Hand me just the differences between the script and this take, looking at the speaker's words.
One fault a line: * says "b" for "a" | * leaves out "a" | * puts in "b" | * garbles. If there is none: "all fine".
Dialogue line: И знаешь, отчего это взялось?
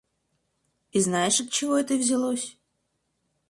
all fine